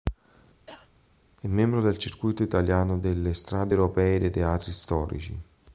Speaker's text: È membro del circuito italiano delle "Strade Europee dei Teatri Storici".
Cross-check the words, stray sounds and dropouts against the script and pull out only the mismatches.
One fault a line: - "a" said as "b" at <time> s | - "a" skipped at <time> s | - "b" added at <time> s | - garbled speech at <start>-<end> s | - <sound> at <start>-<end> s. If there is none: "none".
- cough at 0.7-0.9 s